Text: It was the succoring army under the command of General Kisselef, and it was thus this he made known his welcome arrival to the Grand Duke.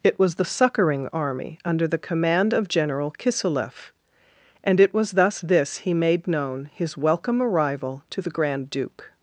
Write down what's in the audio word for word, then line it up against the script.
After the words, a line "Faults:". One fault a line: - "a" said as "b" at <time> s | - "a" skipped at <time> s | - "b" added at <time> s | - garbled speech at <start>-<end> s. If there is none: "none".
It was the succoring army under the command of General Kisselef, and it was thus this he made known his welcome arrival to the Grand Duke.
Faults:
none